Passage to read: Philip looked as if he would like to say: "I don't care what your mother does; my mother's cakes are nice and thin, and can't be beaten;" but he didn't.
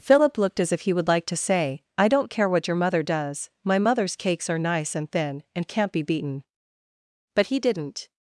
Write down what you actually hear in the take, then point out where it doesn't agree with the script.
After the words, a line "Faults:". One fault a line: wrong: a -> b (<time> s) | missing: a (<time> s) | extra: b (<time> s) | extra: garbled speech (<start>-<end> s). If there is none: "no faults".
Philip looked as if he would like to say: "I don't care what your mother does; my mother's cakes are nice and thin, and can't be beaten;" but he didn't.
Faults:
no faults